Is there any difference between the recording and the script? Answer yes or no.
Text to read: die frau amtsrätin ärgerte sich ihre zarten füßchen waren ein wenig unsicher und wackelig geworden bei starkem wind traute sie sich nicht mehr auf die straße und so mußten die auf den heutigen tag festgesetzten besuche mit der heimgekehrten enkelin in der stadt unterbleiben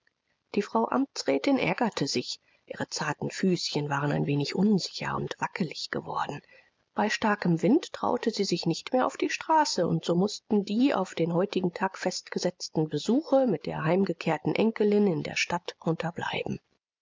no